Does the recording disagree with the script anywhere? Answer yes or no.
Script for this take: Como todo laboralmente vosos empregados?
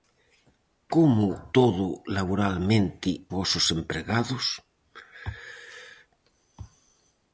no